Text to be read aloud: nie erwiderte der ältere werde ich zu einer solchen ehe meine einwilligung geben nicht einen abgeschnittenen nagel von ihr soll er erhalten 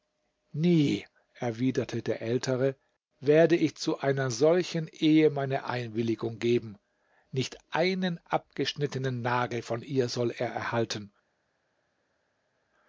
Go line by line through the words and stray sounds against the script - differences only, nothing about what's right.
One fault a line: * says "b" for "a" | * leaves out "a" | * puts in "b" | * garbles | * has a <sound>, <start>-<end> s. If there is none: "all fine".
all fine